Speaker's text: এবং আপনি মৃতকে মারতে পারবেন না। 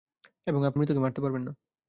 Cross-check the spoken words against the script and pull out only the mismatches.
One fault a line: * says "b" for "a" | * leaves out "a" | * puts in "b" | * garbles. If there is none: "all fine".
all fine